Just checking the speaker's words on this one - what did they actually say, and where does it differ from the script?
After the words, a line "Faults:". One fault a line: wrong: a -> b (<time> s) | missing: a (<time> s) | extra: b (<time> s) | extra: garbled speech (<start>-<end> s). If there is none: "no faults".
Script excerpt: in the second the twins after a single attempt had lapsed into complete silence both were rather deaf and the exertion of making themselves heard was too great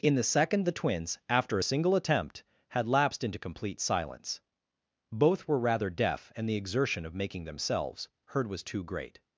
in the second the twins after a single attempt had lapsed into complete silence both were rather deaf and the exertion of making themselves heard was too great
Faults:
no faults